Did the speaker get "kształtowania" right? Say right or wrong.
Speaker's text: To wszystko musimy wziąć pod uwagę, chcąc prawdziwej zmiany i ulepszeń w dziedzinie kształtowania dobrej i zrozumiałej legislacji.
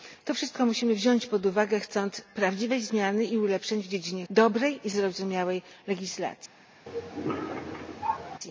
wrong